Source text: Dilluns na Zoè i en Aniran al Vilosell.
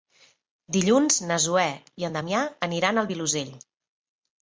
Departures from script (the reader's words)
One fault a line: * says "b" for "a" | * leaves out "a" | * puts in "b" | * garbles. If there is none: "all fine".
* puts in "Damià"